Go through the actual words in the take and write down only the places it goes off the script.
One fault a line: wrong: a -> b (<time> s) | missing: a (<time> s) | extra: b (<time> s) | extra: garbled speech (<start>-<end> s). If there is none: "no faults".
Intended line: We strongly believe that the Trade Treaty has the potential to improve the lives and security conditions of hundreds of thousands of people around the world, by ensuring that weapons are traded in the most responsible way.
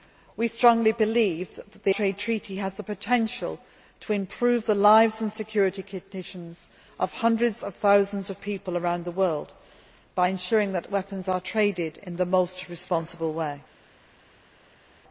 no faults